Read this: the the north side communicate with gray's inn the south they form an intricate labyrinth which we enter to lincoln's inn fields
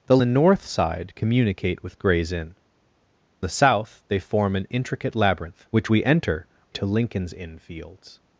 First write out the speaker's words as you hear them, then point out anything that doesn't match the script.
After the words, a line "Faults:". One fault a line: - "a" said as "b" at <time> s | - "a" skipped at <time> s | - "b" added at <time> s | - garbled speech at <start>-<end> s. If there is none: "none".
the the north side communicate with gray's inn the south they form an intricate labyrinth which we enter to lincoln's inn fields
Faults:
none